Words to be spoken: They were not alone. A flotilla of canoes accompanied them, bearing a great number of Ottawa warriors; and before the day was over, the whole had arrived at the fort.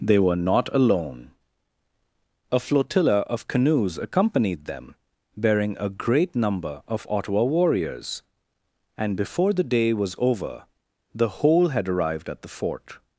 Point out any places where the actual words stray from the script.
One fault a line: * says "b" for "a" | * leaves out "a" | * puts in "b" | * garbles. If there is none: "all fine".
all fine